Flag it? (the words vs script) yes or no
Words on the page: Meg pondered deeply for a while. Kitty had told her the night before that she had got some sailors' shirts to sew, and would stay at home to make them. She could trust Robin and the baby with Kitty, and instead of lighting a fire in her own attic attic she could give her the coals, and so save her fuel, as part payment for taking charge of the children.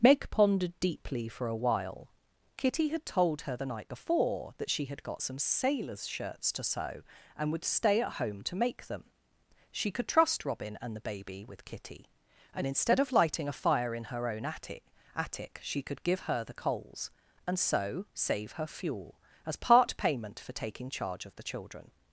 no